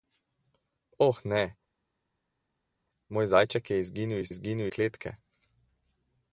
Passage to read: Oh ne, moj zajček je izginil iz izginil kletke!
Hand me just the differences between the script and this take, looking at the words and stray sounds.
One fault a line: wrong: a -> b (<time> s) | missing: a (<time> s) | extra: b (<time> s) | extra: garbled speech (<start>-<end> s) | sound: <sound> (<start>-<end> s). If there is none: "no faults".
no faults